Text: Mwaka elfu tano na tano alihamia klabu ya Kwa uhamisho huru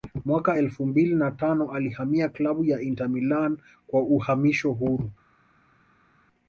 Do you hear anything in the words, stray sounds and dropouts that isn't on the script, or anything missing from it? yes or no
yes